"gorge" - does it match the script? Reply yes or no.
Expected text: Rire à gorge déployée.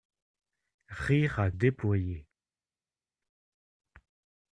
no